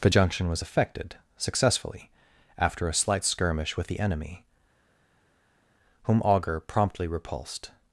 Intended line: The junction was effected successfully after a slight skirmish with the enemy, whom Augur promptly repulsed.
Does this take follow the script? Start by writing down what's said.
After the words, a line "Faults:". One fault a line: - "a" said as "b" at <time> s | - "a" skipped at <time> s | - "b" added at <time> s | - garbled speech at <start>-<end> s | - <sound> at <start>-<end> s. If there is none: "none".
The junction was effected successfully after a slight skirmish with the enemy, whom Augur promptly repulsed.
Faults:
none